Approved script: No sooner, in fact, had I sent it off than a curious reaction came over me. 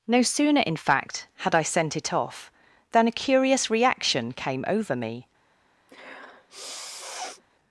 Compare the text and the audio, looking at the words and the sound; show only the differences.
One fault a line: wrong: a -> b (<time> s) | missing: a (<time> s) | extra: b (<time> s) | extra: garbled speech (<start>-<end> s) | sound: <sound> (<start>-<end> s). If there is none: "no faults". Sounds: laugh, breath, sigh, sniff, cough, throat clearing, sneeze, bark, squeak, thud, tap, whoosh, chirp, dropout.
sound: sniff (5.9-7.4 s)